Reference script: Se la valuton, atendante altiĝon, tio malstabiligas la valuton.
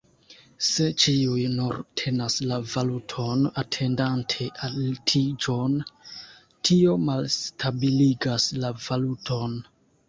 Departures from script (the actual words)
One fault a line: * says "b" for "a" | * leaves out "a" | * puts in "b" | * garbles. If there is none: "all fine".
* puts in "ĉiuj nur tenas"